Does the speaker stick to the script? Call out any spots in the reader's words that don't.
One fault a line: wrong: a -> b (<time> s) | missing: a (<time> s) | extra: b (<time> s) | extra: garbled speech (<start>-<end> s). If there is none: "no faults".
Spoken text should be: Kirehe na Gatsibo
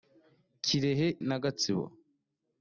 no faults